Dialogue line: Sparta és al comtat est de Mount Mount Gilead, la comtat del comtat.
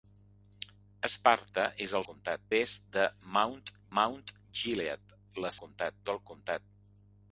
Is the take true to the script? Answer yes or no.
yes